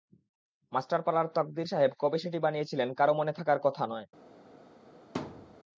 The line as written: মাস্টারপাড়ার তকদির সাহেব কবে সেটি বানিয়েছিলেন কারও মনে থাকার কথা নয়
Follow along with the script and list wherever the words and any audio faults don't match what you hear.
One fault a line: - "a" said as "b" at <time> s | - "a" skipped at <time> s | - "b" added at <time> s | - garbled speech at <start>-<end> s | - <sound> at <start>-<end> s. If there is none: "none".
- thud at 5.1-5.6 s